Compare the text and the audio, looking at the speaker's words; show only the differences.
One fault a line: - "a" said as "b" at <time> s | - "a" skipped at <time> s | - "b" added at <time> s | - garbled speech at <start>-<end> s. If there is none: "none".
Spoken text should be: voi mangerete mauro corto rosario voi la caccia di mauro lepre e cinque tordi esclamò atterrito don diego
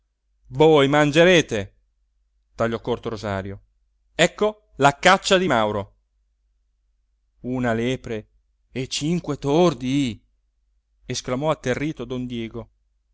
- "mauro" said as "tagliò" at 2.5 s
- "voi" said as "ecco" at 4.2 s
- "una" added at 7.4 s